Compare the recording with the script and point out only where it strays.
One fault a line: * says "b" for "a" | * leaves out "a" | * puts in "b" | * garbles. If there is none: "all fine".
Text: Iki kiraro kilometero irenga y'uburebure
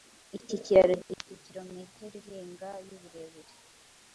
* puts in "gifite"